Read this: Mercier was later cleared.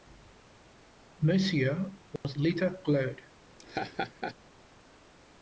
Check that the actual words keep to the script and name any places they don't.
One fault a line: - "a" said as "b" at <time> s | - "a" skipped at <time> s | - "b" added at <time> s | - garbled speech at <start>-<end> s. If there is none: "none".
none